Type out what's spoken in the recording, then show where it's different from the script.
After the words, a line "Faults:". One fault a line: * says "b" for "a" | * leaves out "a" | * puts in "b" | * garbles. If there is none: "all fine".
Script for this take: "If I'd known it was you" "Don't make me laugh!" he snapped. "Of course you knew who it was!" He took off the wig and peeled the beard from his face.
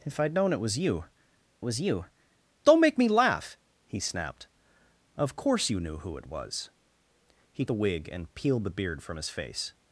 "If I'd known it was you was you" "Don't make me laugh!" he snapped. "Of course you knew who it was!" He the wig and peeled the beard from his face.
Faults:
* puts in "was you"
* leaves out "took off"